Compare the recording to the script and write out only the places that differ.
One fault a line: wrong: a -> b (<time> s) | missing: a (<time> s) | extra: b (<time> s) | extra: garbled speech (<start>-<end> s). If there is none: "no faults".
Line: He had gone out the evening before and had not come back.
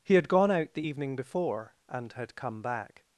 missing: not (2.3 s)